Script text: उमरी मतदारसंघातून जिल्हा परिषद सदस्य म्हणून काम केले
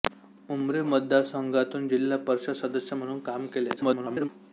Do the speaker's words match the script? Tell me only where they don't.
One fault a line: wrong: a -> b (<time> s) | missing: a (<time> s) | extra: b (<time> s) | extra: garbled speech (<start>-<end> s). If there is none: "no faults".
extra: garbled speech (3.8-4.3 s)